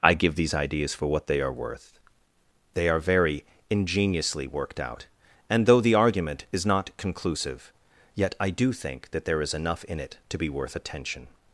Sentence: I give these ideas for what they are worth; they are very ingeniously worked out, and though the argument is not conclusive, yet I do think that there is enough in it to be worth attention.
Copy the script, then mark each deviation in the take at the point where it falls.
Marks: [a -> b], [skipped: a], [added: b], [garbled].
I give these ideas for what they are worth; they are very ingeniously worked out, and though the argument is not conclusive, yet I do think that there is enough in it to be worth attention.